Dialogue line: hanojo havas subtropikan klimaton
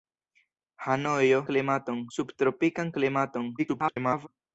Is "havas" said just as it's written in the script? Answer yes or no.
no